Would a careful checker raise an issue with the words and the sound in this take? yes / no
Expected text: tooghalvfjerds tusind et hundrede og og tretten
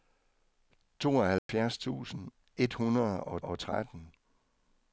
yes